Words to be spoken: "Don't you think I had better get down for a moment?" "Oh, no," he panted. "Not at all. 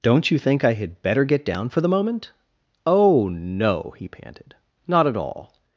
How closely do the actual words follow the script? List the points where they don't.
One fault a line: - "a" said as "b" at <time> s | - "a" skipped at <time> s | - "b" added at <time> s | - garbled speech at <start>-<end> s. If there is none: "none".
- "a" said as "the" at 1.8 s